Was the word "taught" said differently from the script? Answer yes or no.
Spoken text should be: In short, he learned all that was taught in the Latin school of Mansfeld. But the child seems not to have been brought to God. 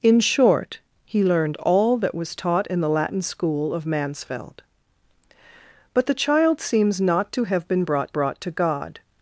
no